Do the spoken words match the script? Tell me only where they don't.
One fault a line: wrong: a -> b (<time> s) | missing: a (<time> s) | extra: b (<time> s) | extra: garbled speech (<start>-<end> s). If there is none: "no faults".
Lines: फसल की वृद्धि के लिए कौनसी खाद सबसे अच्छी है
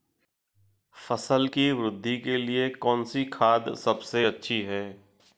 no faults